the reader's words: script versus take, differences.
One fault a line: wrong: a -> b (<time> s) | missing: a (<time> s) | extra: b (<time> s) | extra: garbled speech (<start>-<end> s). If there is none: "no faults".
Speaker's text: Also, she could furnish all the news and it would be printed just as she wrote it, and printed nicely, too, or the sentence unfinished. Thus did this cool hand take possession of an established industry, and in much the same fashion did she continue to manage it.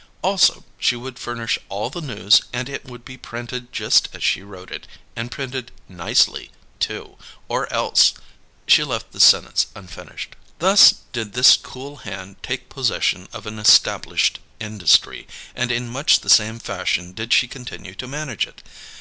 wrong: could -> would (0.9 s)
extra: else She left (7.7 s)